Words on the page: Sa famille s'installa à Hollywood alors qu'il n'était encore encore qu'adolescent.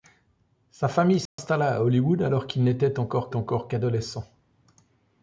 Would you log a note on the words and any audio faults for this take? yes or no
yes